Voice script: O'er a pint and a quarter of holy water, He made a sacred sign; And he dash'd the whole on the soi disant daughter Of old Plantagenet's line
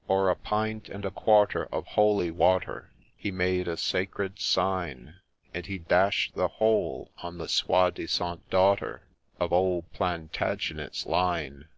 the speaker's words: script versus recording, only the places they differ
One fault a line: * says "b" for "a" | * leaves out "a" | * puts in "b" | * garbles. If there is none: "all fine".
all fine